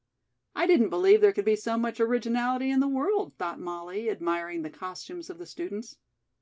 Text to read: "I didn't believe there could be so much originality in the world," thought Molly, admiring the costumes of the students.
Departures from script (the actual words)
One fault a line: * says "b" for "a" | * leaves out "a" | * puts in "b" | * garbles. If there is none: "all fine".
all fine